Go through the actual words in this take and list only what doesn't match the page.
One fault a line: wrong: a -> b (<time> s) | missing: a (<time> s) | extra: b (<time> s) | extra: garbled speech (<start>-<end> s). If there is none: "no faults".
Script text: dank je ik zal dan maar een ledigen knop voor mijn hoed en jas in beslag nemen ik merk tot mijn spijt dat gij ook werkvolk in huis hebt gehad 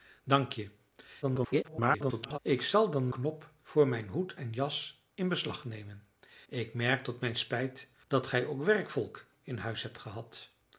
extra: garbled speech (1.2-2.4 s)
missing: maar een ledigen (3.1 s)